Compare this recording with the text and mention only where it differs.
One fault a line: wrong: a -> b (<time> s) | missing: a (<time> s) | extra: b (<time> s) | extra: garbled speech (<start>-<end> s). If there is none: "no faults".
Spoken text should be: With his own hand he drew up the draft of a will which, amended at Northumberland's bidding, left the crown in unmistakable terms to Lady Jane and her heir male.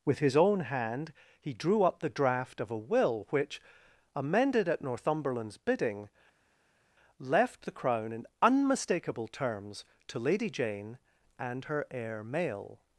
no faults